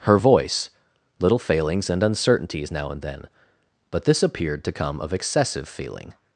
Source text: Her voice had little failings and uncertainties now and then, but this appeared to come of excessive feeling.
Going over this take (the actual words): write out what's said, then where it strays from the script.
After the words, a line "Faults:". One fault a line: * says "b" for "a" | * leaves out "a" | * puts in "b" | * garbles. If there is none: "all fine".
Her voice little failings and uncertainties now and then, but this appeared to come of excessive feeling.
Faults:
* leaves out "had"